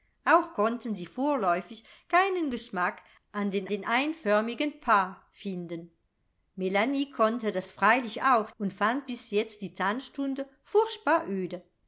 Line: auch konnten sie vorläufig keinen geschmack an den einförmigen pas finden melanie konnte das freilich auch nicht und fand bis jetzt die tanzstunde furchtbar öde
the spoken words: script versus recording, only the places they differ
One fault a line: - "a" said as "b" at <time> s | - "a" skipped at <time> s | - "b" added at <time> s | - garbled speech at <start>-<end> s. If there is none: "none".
- "den" added at 3.7 s
- "nicht" skipped at 8.5 s